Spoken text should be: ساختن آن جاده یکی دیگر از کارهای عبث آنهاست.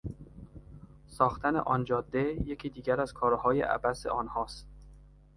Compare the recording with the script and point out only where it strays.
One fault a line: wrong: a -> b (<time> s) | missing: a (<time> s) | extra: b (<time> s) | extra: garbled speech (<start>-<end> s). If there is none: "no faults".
no faults